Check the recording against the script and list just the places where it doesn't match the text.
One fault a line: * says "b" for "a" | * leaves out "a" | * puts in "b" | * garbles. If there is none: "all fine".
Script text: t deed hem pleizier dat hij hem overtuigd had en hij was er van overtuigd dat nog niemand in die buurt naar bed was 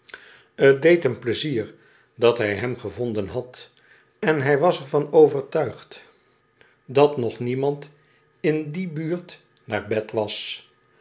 * says "gevonden" for "overtuigd"